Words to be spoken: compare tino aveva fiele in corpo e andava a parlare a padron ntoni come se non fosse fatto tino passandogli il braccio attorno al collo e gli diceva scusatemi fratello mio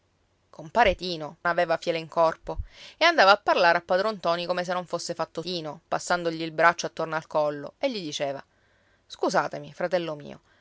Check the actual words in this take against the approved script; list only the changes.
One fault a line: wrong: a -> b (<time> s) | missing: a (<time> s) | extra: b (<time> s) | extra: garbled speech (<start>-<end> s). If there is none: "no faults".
no faults